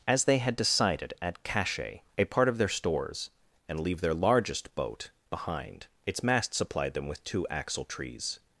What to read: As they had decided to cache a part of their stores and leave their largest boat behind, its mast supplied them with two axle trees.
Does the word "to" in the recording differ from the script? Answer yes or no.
yes